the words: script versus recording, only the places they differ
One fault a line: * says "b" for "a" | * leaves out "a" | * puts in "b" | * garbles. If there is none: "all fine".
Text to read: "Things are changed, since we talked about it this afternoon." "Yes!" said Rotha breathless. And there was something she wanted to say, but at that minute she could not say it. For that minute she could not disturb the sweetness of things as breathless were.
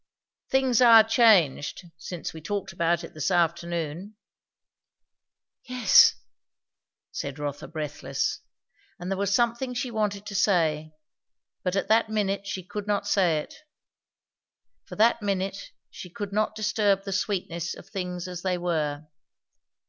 * says "they" for "breathless"